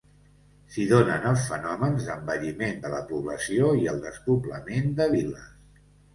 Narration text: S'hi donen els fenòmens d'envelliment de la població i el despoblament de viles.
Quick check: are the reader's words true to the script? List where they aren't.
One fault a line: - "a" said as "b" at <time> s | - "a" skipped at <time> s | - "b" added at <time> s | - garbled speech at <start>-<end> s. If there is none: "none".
none